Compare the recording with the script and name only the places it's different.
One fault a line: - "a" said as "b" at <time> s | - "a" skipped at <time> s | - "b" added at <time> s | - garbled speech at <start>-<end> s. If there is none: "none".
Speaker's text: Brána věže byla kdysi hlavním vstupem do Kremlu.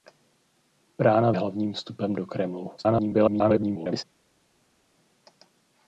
- "věže byla kdysi" skipped at 1.3 s
- garbled speech at 2.8-4.0 s